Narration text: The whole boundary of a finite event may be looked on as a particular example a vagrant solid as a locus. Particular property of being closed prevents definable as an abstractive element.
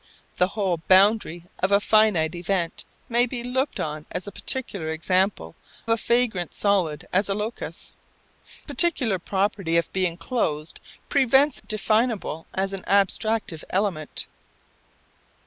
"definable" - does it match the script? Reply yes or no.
yes